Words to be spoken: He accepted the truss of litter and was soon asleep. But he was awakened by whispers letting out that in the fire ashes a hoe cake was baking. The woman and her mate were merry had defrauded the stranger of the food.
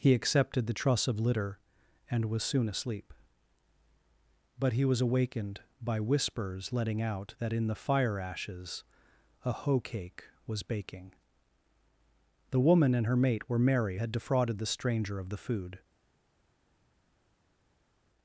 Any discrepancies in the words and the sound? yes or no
no